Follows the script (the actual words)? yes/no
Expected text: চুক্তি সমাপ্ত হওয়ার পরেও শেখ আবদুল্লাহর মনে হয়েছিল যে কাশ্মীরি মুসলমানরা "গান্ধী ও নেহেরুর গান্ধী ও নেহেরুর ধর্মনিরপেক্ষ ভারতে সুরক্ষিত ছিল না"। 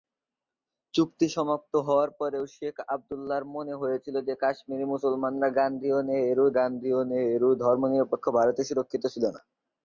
yes